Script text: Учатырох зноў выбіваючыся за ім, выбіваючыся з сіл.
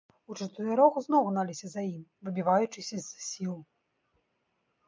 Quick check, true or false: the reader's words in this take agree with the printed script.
false